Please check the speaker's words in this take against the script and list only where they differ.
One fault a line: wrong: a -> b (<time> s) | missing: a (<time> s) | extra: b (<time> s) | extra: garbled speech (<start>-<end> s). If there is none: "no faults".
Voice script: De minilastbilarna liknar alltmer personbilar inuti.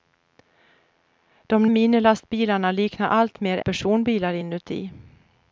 no faults